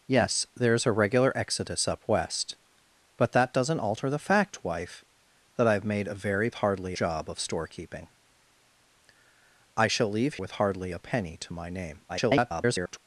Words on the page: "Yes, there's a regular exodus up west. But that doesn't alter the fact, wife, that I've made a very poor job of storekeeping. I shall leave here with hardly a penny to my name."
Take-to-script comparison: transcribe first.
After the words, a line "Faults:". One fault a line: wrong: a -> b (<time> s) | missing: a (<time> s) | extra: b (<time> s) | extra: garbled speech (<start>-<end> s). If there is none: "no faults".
"Yes, there's a regular exodus up west. But that doesn't alter the fact, wife, that I've made a very hardly job of storekeeping. I shall leave with hardly a penny to my name." [garbled]
Faults:
wrong: poor -> hardly (6.5 s)
missing: here (10.4 s)
extra: garbled speech (12.1-13.0 s)